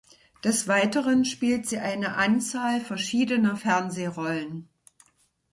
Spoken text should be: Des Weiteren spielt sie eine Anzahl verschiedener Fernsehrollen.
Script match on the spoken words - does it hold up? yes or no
yes